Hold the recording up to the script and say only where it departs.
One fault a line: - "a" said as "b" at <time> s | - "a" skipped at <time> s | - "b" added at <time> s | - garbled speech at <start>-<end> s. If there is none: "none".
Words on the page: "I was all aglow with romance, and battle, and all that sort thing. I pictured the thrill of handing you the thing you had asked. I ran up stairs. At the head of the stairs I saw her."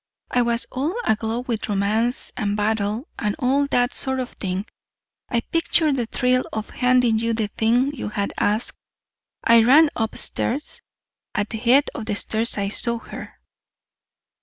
- "of" added at 4.2 s